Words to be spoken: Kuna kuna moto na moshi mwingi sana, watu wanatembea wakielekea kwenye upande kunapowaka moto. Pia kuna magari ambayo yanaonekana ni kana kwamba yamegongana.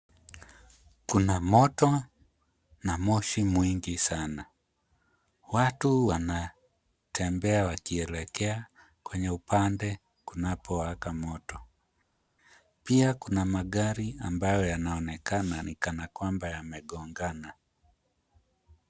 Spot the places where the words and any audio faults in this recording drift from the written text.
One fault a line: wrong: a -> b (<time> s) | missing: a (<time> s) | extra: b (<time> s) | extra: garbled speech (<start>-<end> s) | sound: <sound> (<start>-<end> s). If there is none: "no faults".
missing: kuna (1.4 s)